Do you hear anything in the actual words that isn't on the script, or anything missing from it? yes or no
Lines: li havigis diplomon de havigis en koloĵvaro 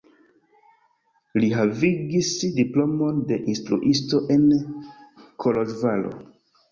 yes